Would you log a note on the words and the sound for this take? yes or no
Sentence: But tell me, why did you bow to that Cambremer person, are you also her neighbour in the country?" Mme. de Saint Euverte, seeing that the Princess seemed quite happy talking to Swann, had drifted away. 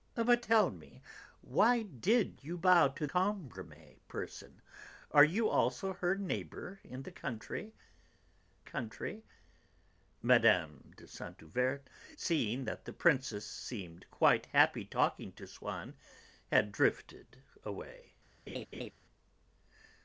yes